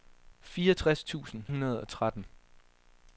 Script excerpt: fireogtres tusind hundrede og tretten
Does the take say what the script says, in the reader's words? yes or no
yes